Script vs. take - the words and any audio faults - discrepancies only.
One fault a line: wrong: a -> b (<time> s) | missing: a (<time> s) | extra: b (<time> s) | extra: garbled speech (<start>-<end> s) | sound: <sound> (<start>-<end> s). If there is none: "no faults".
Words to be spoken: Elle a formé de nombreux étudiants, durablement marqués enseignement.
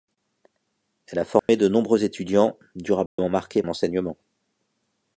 sound: dropout (1.4-1.5 s)
sound: dropout (3.1-3.2 s)